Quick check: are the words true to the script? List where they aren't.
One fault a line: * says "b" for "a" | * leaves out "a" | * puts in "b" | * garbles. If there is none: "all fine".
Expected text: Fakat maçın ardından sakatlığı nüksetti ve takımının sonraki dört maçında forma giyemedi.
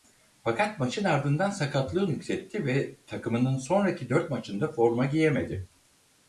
all fine